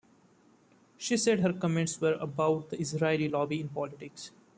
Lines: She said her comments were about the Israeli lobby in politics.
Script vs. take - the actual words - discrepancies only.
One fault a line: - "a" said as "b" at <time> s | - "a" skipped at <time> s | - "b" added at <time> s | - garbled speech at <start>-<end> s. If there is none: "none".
none